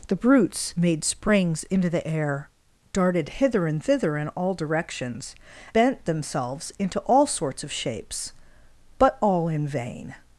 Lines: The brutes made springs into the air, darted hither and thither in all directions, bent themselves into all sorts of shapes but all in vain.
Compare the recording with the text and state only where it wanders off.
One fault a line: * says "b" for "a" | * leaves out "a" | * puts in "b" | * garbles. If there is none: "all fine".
all fine